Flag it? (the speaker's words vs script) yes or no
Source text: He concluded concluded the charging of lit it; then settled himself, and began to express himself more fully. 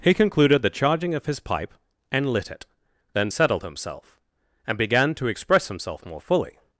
yes